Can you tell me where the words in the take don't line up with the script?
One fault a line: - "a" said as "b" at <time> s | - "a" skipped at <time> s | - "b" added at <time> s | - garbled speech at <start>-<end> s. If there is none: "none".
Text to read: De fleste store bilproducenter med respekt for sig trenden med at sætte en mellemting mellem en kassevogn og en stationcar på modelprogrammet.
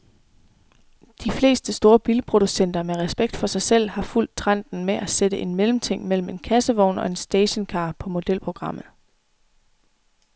- "selv har fulgt" added at 3.6 s